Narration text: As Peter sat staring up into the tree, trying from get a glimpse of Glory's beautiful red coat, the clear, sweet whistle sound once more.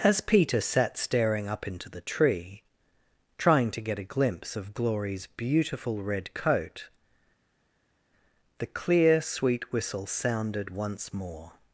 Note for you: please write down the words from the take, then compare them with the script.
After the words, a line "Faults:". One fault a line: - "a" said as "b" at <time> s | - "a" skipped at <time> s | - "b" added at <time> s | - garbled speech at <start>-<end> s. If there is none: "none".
As Peter sat staring up into the tree, trying to get a glimpse of Glory's beautiful red coat, the clear, sweet whistle sounded once more.
Faults:
- "from" said as "to" at 3.7 s
- "sound" said as "sounded" at 10.1 s